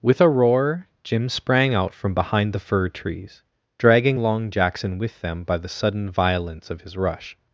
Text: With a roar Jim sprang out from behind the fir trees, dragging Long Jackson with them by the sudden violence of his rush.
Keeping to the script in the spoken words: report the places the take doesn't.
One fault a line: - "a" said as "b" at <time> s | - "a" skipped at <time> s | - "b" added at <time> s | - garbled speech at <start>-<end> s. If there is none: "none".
none